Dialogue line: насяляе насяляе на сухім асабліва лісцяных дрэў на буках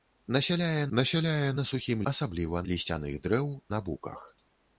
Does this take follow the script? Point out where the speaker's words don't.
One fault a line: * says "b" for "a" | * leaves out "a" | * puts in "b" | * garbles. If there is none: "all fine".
all fine